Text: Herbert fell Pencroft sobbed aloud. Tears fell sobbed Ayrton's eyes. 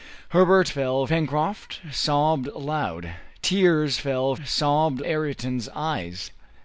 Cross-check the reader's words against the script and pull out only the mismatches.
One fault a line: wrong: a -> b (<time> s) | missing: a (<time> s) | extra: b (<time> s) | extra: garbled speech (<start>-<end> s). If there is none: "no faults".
no faults